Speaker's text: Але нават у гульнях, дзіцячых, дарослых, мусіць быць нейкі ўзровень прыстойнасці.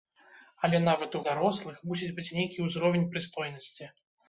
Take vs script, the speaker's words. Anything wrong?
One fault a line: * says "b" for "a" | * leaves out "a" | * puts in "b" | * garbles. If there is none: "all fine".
* leaves out "гульнях дзіцячых"